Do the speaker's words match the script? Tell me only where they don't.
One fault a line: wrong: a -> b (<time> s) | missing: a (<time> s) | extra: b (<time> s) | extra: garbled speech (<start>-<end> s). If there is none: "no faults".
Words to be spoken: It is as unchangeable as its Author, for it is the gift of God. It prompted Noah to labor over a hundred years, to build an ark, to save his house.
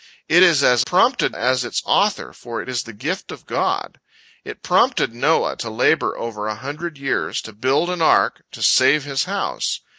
wrong: unchangeable -> prompted (0.8 s)